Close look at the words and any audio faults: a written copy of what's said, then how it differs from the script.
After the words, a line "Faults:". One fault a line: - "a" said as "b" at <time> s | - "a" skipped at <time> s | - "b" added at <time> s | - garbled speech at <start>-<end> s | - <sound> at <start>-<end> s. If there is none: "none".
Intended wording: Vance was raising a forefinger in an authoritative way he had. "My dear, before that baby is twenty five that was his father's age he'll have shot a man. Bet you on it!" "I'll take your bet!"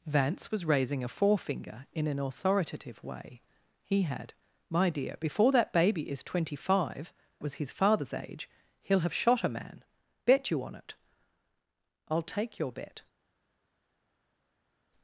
Vance was raising a forefinger in an authoritative way he had. "My dear, before that baby is twenty five was his father's age he'll have shot a man. Bet you on it!" "I'll take your bet!"
Faults:
- "that" skipped at 7.1 s